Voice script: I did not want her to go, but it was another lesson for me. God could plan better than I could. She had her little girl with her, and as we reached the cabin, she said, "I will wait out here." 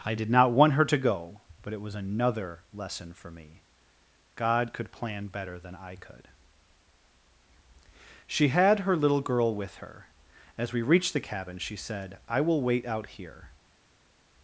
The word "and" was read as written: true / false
false